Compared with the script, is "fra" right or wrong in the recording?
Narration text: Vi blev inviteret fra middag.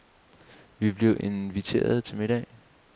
wrong